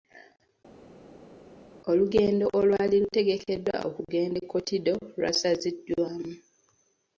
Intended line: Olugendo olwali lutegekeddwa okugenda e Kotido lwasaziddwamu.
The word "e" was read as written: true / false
true